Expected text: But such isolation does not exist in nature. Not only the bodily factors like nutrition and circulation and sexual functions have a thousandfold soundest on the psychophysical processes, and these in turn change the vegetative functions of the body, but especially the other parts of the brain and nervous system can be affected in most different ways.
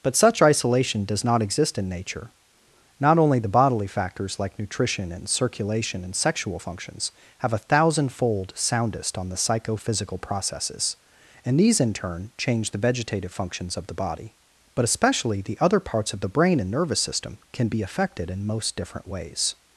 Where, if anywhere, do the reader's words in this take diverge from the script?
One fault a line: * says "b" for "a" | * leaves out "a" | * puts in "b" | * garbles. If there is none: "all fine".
all fine